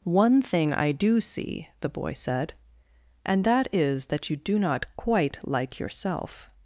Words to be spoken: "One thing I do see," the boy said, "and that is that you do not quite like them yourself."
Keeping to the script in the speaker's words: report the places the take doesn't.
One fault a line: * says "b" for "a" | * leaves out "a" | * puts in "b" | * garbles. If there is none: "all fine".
* leaves out "them"